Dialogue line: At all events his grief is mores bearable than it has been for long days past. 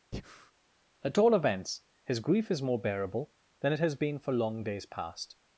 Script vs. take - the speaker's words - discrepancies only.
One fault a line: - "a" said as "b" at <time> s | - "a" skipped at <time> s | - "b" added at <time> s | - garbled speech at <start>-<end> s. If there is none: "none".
- "mores" said as "more" at 2.6 s